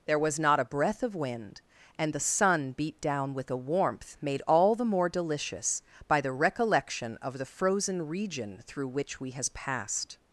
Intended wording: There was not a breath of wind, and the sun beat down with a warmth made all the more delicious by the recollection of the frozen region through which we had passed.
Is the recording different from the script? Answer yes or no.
yes